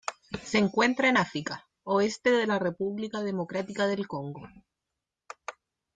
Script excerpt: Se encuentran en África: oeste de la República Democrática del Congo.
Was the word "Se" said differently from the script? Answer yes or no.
no